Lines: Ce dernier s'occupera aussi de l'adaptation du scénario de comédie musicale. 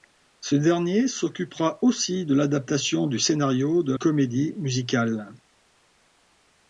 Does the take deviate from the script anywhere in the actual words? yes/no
no